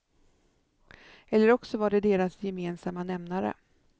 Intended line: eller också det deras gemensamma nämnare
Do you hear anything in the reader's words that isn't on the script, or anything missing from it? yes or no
yes